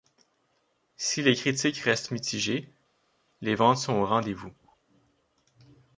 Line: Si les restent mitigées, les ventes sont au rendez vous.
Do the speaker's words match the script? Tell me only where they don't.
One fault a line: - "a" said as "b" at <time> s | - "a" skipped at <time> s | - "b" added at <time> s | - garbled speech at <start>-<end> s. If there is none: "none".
- "critiques" added at 1.4 s